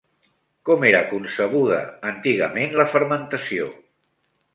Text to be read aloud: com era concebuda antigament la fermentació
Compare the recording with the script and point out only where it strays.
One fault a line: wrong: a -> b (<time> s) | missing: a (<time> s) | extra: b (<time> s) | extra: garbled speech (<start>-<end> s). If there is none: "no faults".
no faults